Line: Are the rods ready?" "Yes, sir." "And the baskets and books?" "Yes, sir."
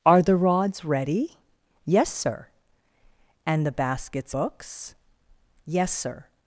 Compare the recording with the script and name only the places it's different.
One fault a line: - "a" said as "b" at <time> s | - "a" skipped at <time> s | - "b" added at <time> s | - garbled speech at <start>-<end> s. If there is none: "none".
- "and" skipped at 4.3 s